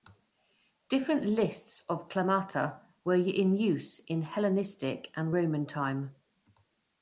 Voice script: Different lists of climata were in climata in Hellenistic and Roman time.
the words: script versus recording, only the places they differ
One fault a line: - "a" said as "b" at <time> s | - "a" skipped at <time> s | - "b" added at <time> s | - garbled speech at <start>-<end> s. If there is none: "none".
- "climata" said as "use" at 3.6 s